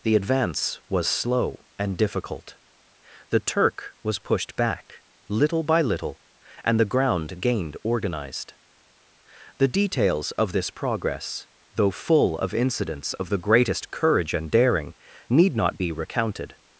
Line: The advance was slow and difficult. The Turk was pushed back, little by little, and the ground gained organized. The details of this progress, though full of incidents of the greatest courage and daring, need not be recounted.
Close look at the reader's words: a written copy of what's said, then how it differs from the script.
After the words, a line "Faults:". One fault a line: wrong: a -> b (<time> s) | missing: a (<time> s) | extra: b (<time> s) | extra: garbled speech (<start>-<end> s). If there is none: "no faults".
The advance was slow and difficult. The Turk was pushed back, little by little, and the ground gained organized. The details of this progress, though full of incidents of the greatest courage and daring, need not be recounted.
Faults:
no faults